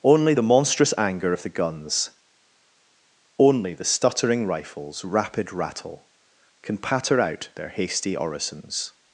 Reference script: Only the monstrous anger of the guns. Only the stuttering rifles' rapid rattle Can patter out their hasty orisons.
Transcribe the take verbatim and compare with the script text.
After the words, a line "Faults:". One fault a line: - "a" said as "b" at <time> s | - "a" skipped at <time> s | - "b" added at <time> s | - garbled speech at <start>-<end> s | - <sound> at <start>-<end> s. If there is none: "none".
Only the monstrous anger of the guns. Only the stuttering rifles' rapid rattle Can patter out their hasty orisons.
Faults:
none